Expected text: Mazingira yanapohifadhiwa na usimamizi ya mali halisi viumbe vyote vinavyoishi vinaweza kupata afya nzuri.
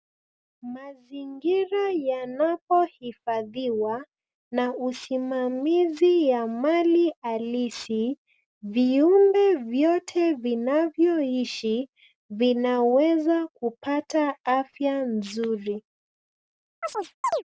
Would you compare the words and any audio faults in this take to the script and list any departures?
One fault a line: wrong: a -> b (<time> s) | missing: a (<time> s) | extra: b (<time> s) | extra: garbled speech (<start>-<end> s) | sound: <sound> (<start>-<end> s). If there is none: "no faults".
sound: chirp (16.8-17.4 s)